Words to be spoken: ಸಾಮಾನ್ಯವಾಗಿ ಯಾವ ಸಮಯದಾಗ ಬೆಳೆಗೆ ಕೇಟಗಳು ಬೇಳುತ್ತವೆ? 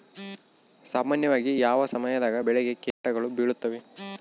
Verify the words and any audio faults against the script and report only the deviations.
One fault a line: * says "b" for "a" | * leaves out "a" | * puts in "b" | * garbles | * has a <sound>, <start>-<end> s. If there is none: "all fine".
* has a dropout, 2.9-3.0 s